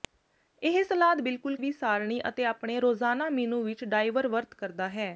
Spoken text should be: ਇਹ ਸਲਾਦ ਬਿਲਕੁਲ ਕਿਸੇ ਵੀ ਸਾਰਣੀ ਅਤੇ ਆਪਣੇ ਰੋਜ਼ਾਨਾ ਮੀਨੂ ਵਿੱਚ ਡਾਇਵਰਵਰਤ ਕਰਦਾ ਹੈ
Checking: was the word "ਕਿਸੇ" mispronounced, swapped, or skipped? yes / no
yes